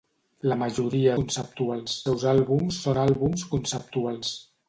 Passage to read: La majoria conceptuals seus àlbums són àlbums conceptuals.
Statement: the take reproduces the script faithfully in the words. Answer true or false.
true